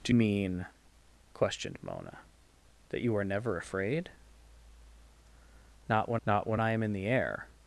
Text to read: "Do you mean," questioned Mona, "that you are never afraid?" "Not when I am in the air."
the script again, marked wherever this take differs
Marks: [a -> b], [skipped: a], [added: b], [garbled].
"Do [skipped: you] mean," questioned Mona, "that you are never afraid?" "Not when [added: not when] I am in the air."